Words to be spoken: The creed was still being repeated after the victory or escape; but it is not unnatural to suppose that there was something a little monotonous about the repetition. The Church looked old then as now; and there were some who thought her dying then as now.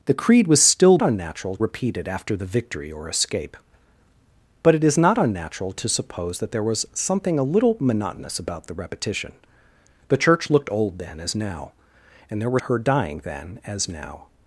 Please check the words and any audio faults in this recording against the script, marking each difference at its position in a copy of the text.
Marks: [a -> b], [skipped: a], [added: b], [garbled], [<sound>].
The creed was still [being -> unnatural] repeated after the victory or escape; but it is not unnatural to suppose that there was something a little monotonous about the repetition. The Church looked old then as now; and there were [skipped: some who thought] her dying then as now.